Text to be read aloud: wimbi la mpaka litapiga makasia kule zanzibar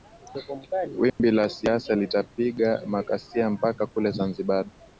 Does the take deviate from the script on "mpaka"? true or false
true